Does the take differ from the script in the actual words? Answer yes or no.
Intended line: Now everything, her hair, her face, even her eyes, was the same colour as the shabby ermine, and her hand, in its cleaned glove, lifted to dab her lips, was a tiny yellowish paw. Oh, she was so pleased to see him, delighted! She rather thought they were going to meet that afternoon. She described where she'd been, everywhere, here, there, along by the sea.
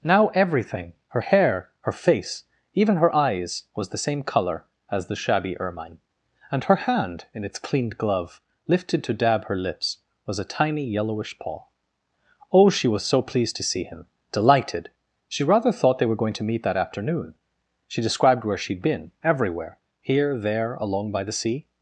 no